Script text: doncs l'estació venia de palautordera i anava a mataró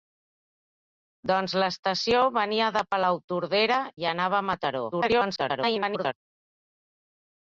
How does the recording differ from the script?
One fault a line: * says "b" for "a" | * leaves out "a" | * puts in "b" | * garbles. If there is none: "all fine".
* garbles